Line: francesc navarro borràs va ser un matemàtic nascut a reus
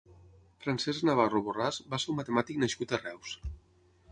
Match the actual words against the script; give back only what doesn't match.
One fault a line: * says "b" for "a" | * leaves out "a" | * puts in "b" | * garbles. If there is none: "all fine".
all fine